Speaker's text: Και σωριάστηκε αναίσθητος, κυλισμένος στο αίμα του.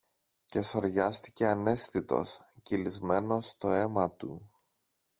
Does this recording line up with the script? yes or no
yes